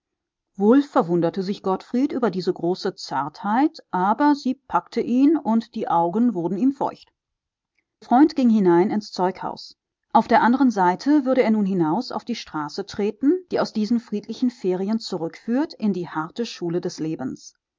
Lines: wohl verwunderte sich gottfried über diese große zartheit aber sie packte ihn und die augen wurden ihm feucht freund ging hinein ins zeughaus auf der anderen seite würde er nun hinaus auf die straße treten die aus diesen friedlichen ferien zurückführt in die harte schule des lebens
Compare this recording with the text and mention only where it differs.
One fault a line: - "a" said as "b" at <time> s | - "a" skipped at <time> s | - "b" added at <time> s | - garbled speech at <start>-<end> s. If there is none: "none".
none